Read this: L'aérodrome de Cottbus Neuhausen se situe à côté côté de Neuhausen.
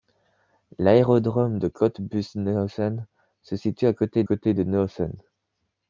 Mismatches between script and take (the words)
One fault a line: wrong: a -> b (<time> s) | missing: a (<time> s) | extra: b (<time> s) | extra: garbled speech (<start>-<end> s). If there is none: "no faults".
no faults